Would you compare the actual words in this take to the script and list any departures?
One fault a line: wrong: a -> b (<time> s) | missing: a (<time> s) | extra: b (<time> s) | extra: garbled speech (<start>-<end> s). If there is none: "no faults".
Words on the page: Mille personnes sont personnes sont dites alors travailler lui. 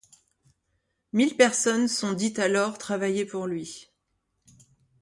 missing: personnes sont (2.1 s)
extra: pour (3.3 s)